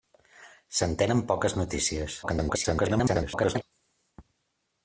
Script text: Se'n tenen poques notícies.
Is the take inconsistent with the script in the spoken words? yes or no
yes